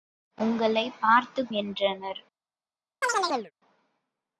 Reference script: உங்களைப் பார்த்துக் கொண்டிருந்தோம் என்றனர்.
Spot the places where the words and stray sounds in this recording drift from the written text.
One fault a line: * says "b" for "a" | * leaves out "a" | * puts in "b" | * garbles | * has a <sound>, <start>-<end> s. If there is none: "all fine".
* leaves out "கொண்டிருந்தோம்"
* has a chirp, 3.0-3.5 s